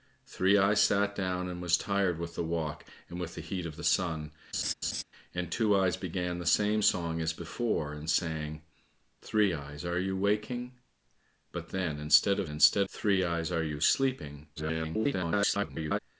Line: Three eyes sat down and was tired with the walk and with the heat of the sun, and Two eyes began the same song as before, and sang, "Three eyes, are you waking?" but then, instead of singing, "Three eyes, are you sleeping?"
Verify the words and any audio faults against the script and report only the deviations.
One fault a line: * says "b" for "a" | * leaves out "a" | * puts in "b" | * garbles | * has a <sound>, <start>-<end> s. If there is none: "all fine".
* has a laugh, 4.5-5.0 s
* says "instead" for "singing"
* garbles